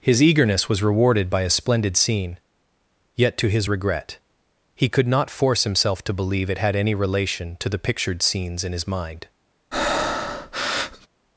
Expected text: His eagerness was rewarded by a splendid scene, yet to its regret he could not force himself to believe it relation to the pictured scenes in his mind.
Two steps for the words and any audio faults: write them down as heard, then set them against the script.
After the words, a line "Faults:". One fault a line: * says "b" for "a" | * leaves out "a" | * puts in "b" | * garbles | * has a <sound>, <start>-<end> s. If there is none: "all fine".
His eagerness was rewarded by a splendid scene, yet to his regret he could not force himself to believe it had any relation to the pictured scenes in his mind.
Faults:
* says "his" for "its"
* puts in "had any"
* has a breath, 9.7-11.1 s